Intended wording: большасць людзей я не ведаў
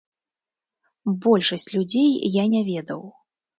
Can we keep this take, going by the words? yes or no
yes